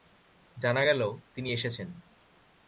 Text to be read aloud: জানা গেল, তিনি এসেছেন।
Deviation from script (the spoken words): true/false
false